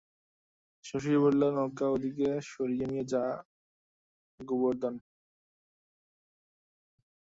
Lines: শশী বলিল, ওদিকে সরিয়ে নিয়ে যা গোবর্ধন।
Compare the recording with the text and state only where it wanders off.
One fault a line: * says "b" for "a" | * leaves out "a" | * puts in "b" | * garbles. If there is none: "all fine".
* puts in "নৌকা"